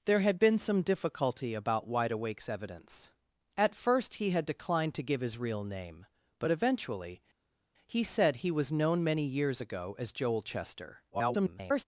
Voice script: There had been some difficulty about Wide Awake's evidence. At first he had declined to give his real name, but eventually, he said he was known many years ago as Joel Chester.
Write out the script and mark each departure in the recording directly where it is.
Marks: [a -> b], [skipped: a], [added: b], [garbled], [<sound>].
There had been some difficulty about Wide Awake's evidence. At first he had declined to give his real name, but eventually, he said he was known many years ago as Joel Chester. [garbled]